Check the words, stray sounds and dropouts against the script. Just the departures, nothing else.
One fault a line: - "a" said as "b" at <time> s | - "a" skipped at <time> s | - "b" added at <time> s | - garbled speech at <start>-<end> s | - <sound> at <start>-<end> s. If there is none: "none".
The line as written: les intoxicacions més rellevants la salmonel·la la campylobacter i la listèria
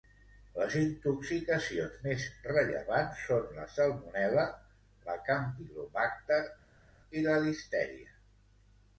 - "són" added at 3.3 s